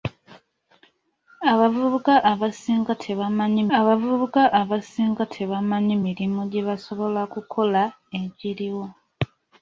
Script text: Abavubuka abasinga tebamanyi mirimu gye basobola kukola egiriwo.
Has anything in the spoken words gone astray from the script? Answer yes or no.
yes